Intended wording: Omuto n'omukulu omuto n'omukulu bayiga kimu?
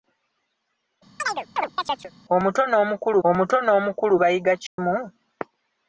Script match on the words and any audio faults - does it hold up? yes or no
no